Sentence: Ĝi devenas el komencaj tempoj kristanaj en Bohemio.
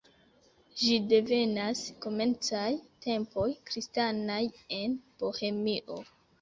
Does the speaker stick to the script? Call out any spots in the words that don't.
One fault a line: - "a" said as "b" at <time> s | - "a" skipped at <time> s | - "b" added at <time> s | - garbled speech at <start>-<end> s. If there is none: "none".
- "el" skipped at 1.8 s